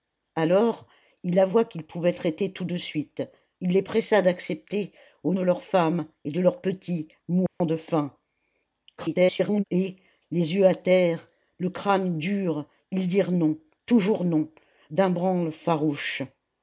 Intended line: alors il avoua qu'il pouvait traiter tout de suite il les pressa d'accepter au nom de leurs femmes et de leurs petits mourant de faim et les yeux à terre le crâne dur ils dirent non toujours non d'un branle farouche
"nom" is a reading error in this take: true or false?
true